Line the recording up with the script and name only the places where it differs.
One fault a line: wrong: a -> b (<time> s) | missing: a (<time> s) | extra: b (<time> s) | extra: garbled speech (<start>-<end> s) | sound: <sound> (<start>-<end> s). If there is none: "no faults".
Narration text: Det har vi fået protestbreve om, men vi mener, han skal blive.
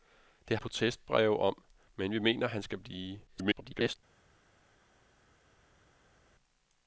missing: har vi fået (0.6 s)
extra: garbled speech (3.3-4.0 s)